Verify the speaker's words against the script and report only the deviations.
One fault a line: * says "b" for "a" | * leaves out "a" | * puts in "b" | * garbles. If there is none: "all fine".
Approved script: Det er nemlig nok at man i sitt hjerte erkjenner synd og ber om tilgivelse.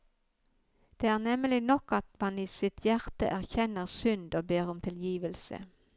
all fine